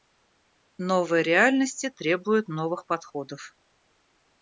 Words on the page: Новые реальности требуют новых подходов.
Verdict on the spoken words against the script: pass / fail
pass